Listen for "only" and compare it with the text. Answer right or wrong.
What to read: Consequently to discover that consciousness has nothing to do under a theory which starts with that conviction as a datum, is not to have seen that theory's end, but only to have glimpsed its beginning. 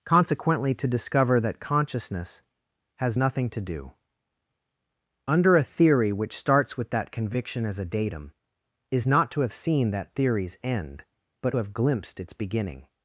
wrong